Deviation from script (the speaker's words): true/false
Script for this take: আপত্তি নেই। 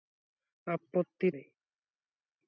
false